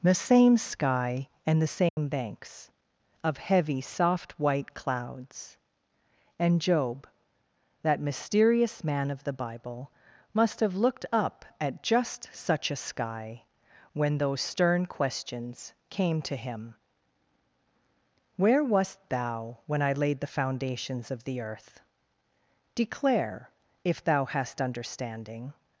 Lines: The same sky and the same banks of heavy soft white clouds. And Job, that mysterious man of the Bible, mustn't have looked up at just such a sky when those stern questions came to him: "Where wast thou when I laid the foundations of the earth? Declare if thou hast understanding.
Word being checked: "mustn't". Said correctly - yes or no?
no